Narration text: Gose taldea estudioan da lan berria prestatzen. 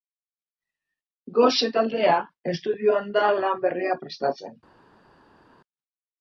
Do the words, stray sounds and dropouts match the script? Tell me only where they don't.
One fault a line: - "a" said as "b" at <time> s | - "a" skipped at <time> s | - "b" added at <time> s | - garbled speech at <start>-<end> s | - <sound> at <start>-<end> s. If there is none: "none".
none